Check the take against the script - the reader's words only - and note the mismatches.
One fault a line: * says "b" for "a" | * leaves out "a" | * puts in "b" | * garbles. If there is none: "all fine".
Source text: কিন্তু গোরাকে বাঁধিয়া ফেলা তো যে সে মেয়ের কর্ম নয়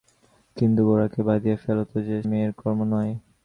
* leaves out "সে"